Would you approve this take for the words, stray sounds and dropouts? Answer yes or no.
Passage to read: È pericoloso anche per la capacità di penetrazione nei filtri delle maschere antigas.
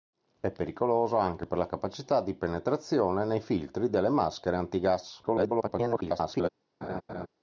no